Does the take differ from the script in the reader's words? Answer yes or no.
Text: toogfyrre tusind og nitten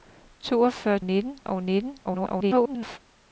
yes